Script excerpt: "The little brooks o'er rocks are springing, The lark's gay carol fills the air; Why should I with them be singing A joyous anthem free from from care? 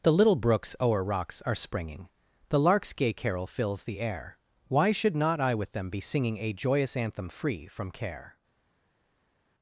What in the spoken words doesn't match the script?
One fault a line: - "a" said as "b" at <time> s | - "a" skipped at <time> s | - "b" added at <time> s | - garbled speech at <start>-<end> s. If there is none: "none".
- "not" added at 5.2 s
- "from" skipped at 7.9 s